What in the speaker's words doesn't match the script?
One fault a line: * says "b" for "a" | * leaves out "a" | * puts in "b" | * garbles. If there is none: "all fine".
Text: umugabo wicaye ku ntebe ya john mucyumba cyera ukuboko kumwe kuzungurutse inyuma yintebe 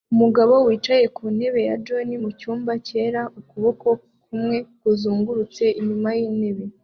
all fine